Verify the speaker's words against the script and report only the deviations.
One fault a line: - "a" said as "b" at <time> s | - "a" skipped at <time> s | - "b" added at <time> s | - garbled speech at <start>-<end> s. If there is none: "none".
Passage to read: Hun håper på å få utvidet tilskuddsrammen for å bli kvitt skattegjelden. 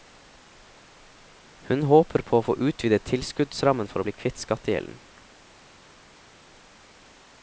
none